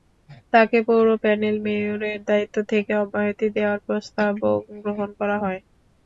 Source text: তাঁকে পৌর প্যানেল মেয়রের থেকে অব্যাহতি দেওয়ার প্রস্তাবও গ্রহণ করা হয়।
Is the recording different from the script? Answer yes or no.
yes